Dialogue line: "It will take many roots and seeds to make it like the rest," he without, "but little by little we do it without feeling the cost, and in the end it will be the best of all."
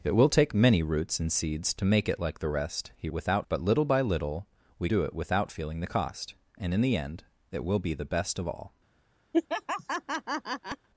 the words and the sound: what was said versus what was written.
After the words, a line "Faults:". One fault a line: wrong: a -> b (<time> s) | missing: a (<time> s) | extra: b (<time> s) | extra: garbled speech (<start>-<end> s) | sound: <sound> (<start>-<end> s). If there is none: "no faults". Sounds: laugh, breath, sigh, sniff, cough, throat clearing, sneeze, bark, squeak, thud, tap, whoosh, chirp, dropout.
"It will take many roots and seeds to make it like the rest," he without, "but little by little we do it without feeling the cost, and in the end it will be the best of all."
Faults:
sound: laugh (9.3-10.9 s)